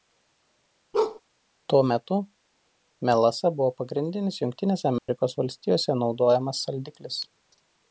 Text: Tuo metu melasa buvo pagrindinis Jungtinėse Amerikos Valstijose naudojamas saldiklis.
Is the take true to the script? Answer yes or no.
yes